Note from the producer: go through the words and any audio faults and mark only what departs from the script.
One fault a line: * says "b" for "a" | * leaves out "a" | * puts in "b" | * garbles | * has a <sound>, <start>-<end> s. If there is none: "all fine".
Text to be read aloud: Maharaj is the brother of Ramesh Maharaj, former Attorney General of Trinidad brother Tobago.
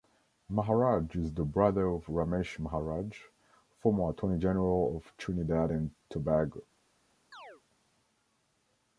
* says "and" for "brother"
* has a chirp, 7.3-7.6 s